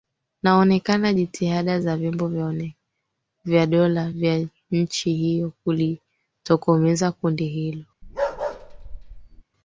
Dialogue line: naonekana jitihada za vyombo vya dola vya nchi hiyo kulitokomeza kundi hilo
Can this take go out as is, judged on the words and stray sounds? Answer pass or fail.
fail